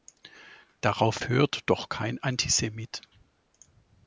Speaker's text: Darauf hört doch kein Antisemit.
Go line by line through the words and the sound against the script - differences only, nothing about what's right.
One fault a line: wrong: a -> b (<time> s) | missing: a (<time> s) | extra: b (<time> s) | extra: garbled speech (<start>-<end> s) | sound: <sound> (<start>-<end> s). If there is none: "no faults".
no faults